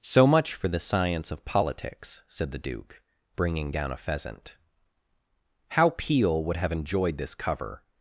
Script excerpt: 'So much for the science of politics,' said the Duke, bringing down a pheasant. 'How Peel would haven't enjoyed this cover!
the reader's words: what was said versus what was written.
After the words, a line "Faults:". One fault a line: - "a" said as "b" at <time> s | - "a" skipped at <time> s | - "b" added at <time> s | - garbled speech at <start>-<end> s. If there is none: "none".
'So much for the science of politics,' said the Duke, bringing down a pheasant. 'How Peel would have enjoyed this cover!
Faults:
- "haven't" said as "have" at 6.6 s